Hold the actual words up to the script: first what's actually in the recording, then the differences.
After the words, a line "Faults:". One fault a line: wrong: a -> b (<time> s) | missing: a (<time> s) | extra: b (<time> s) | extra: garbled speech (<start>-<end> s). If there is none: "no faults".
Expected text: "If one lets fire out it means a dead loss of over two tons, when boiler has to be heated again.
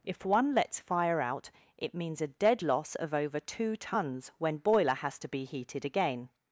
"If one lets fire out it means a dead loss of over two tons, when boiler has to be heated again.
Faults:
no faults